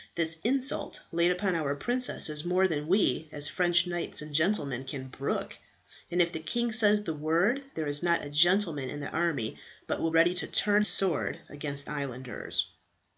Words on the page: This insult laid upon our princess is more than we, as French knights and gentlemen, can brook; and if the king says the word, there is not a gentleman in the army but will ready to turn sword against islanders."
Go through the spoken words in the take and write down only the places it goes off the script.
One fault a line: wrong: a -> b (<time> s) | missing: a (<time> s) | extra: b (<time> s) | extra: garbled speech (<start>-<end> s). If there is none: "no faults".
no faults